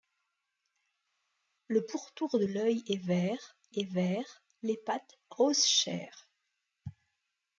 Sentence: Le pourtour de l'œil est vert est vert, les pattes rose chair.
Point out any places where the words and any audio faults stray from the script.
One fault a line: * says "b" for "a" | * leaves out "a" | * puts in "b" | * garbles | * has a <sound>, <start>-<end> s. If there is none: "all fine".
all fine